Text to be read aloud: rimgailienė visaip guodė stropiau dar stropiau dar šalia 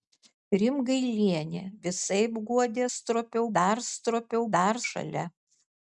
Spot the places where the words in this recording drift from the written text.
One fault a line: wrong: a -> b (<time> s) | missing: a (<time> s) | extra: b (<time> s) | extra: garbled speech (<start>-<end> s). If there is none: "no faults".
no faults